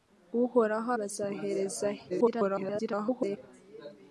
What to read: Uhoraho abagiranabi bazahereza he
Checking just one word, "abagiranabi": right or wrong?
wrong